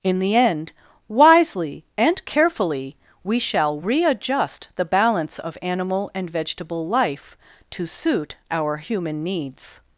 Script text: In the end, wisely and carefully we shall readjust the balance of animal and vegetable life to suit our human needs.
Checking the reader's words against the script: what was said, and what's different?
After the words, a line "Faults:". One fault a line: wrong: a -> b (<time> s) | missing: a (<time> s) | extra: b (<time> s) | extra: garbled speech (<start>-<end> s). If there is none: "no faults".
In the end, wisely and carefully we shall readjust the balance of animal and vegetable life to suit our human needs.
Faults:
no faults